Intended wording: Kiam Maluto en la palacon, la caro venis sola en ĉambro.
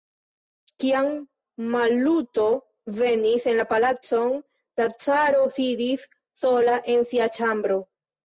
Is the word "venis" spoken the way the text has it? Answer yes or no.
no